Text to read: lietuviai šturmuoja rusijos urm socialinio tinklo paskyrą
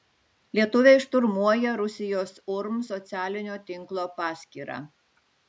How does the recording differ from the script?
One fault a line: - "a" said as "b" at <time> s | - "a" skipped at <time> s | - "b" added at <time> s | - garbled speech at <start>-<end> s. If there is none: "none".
none